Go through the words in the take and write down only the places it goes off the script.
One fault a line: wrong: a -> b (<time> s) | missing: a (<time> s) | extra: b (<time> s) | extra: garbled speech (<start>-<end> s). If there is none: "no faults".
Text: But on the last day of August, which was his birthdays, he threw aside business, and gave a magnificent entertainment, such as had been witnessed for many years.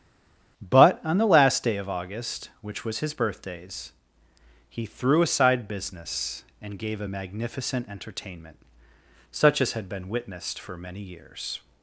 no faults